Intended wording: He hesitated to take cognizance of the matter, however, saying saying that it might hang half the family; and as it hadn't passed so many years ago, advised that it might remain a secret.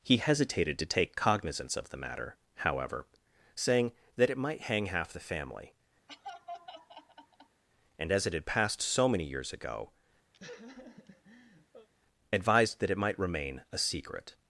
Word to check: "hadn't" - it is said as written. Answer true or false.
false